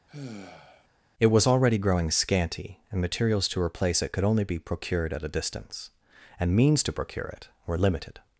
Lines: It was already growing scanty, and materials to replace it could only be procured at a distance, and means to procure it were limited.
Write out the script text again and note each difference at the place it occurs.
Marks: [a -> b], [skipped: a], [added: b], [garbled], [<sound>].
[sigh] It was already growing scanty, and materials to replace it could only be procured at a distance, and means to procure it were limited.